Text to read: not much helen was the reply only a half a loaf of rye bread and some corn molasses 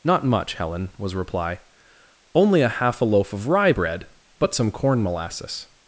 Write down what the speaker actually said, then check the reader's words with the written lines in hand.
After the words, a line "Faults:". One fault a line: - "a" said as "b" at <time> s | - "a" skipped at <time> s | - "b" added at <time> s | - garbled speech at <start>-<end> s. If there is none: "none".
not much helen was reply only a half a loaf of rye bread but some corn molasses
Faults:
- "the" skipped at 1.1 s
- "and" said as "but" at 4.4 s